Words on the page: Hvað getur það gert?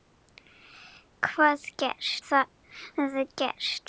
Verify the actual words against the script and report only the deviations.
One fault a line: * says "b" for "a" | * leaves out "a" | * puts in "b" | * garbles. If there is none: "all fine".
* says "gert" for "getur"